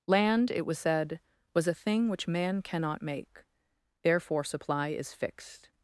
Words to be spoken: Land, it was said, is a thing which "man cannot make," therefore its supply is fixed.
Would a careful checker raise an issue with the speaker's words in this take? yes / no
yes